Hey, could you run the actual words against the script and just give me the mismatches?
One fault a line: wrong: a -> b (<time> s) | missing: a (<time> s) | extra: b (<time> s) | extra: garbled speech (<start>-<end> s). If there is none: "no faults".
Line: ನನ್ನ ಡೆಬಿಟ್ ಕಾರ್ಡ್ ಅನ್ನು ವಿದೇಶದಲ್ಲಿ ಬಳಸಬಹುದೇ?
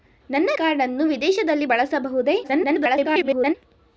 missing: ಡೆಬಿಟ್ (0.5 s)
extra: garbled speech (2.4-3.5 s)